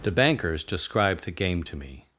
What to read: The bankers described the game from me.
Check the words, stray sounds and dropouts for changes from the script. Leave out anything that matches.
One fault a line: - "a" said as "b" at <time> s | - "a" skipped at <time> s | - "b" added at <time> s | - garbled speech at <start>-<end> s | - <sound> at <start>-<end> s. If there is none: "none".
- "from" said as "to" at 1.6 s